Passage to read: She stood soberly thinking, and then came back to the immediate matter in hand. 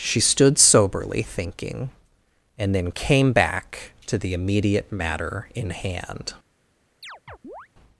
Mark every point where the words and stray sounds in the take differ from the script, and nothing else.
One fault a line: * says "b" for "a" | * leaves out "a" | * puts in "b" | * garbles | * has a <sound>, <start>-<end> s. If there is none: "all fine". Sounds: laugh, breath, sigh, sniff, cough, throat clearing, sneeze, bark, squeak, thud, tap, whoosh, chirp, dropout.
* has a chirp, 7.0-7.7 s